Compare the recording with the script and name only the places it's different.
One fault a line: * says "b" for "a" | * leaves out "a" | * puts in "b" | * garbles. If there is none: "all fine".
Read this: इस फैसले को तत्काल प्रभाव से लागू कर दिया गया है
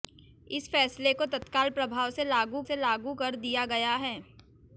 * puts in "से लागू"